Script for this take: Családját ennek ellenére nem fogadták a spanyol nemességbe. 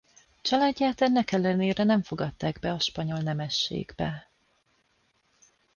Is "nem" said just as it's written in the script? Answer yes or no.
yes